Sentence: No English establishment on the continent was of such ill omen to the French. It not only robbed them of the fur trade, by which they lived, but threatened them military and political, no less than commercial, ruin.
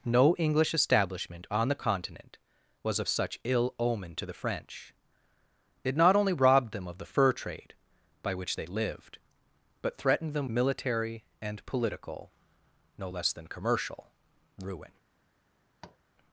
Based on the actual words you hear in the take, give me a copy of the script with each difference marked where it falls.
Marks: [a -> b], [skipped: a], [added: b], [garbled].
No English establishment on the continent was of such ill omen to the French. It not only robbed them of the fur trade, by which they lived, but threatened them military and political, no less than commercial, ruin.